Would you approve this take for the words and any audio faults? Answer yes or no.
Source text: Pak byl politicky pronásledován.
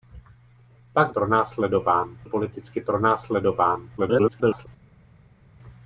no